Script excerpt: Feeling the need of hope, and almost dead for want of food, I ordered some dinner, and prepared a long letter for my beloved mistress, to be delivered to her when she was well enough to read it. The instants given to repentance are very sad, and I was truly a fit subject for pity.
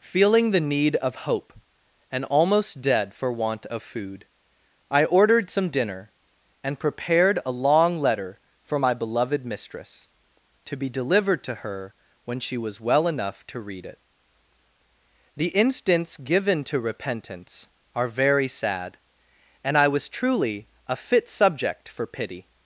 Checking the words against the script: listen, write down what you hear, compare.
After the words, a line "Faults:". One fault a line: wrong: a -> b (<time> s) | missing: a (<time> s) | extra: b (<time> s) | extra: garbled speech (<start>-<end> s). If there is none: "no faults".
Feeling the need of hope, and almost dead for want of food, I ordered some dinner, and prepared a long letter for my beloved mistress, to be delivered to her when she was well enough to read it. The instants given to repentance are very sad, and I was truly a fit subject for pity.
Faults:
no faults